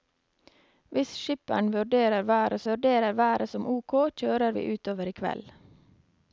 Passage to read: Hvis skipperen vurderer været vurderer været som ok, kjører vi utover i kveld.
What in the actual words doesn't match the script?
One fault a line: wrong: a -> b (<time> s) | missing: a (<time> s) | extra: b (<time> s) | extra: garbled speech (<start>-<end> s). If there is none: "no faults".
no faults